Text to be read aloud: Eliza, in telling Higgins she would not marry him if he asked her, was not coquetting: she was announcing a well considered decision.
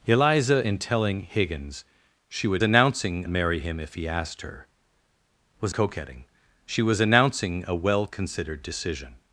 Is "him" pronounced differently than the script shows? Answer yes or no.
no